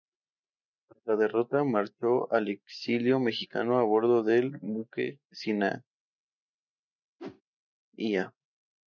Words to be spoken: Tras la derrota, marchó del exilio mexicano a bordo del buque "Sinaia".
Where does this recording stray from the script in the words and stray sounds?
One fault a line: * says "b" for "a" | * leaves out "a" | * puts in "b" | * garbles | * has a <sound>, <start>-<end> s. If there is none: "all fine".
* says "al" for "del"
* has a whoosh, 7.2-7.4 s